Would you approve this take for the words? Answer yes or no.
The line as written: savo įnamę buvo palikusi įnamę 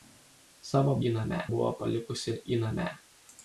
yes